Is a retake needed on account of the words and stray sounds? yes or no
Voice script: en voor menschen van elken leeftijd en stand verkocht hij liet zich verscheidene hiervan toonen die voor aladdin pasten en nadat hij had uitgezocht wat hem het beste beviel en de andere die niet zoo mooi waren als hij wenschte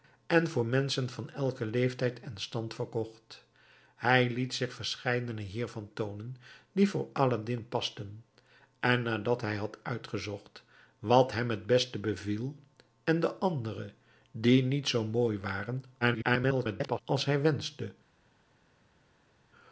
yes